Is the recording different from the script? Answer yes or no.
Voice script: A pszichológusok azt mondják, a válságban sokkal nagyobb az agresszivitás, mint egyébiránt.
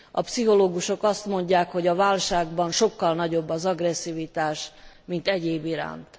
yes